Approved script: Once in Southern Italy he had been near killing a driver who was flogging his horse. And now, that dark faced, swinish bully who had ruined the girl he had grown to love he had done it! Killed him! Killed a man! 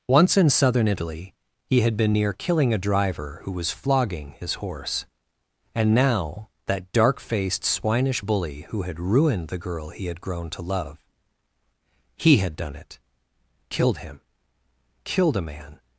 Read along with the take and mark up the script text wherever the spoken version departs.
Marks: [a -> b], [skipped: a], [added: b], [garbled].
Once in Southern Italy he had been near killing a driver who was flogging his horse. And now, that dark faced, swinish bully who had ruined the girl he had grown to love he had done it! Killed him! Killed a man!